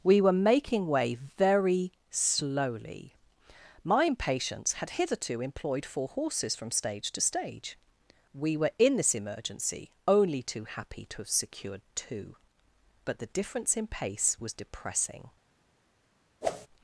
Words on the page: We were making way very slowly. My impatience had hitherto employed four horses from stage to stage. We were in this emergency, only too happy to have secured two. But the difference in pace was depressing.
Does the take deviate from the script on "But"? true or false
false